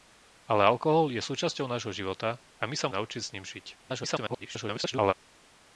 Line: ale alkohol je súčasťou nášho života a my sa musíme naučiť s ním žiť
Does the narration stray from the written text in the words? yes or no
yes